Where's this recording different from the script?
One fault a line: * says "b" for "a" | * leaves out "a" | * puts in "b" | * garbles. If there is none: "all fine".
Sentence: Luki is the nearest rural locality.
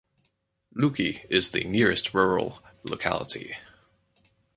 all fine